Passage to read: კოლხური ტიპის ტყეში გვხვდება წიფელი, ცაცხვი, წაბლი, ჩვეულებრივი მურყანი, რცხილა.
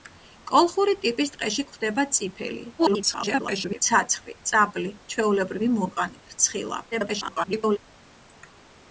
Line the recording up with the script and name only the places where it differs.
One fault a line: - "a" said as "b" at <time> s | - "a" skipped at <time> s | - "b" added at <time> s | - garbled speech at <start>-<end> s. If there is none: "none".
- garbled speech at 2.8-3.8 s
- garbled speech at 6.9-7.8 s